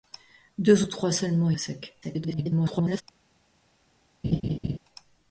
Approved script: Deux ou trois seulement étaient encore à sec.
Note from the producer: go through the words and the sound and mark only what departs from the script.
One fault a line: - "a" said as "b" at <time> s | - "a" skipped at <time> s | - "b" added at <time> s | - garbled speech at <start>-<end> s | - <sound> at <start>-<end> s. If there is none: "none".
- "étaient encore" skipped at 1.5 s
- garbled speech at 2.0-3.0 s
- laugh at 4.2-4.8 s